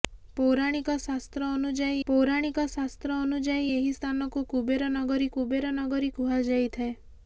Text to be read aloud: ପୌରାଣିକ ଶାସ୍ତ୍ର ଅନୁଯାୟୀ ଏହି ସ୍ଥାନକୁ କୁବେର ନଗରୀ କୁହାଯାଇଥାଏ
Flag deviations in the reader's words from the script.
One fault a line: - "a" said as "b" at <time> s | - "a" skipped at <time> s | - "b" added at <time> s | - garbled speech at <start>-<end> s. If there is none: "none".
- "ପୌରାଣିକ ଶାସ୍ତ୍ର ଅନୁଯାୟୀ" added at 2.1 s
- "କୁବେର ନଗରୀ" added at 5.4 s